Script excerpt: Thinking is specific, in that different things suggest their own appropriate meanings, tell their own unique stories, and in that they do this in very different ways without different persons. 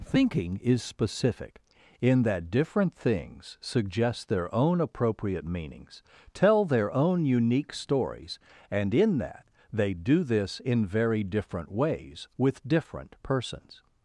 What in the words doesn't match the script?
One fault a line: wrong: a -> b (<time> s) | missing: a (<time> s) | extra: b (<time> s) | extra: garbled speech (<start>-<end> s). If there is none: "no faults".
wrong: without -> with (12.4 s)